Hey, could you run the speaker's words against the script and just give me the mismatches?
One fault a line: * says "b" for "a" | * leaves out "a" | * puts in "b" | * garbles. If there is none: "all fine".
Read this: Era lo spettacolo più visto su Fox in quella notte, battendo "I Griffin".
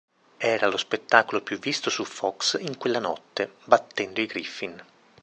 all fine